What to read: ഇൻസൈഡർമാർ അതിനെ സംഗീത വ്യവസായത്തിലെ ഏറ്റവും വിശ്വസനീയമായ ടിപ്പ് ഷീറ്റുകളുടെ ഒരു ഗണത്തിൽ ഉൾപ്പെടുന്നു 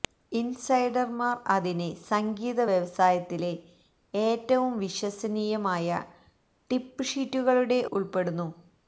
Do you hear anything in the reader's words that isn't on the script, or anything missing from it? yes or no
yes